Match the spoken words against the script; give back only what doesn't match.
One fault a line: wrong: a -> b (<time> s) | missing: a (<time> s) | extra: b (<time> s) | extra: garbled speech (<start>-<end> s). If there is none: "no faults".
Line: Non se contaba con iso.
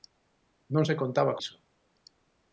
missing: con (1.4 s)